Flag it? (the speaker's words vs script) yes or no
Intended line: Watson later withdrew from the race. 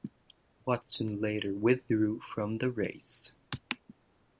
no